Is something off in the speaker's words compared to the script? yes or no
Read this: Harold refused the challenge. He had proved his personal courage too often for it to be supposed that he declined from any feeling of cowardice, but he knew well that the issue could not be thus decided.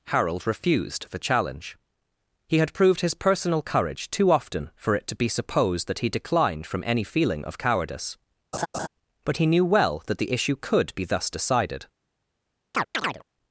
yes